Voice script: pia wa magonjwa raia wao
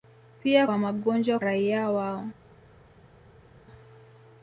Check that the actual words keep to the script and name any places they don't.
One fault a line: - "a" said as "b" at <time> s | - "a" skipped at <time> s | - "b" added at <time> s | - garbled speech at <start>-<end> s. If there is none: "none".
none